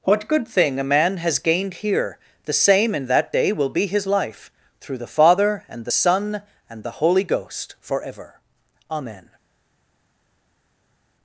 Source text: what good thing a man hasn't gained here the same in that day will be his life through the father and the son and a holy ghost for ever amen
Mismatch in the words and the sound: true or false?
true